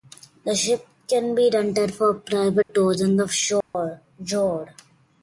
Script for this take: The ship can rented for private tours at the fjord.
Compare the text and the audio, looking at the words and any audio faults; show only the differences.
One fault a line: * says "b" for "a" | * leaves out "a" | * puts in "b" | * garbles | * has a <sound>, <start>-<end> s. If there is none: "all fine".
* puts in "be"
* has a dropout, 2.6-2.7 s
* says "in" for "at"
* has a dropout, 3.6-3.7 s